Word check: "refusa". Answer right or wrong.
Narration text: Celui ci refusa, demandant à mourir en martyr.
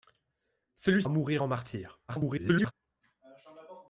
wrong